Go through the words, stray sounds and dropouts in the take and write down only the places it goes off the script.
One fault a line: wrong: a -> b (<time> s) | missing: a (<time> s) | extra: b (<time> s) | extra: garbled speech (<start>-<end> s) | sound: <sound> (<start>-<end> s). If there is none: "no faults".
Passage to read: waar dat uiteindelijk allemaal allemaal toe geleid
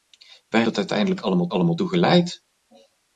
no faults